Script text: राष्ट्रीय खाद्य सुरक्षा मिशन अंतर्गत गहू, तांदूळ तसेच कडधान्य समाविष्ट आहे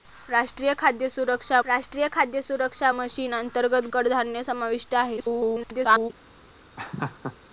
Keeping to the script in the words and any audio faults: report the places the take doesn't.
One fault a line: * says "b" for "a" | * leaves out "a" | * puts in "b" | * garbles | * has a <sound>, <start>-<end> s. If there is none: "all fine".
* says "राष्ट्रीय खाद्य सुरक्षा मिशन अंतर्गत" for "मिशन अंतर्गत गहू तांदूळ तसेच"
* garbles
* has a laugh, 6.8-7.4 s